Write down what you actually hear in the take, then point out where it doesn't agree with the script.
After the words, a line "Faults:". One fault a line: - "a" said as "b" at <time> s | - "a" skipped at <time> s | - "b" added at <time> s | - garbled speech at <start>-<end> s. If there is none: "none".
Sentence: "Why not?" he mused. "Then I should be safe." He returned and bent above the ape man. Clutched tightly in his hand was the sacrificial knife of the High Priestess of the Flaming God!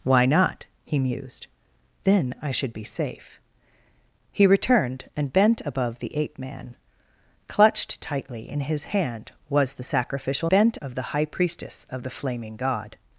"Why not?" he mused. "Then I should be safe." He returned and bent above the ape man. Clutched tightly in his hand was the sacrificial bent of the High Priestess of the Flaming God!
Faults:
- "knife" said as "bent" at 10.5 s